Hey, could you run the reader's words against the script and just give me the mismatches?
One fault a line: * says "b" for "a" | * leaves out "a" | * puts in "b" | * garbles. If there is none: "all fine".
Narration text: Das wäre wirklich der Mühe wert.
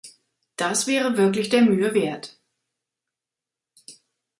all fine